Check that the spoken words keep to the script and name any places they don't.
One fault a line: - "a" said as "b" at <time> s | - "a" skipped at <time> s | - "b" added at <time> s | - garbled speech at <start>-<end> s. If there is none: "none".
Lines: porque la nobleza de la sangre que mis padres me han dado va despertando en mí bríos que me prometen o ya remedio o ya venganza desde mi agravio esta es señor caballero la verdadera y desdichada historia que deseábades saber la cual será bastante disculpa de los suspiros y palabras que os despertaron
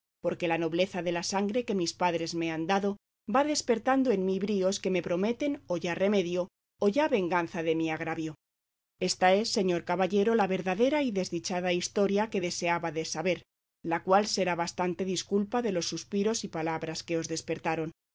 - "desde" said as "de" at 7.6 s